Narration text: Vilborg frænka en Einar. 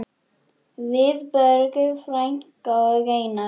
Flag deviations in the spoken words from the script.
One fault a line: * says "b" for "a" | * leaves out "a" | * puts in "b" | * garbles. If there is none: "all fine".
* says "og" for "en"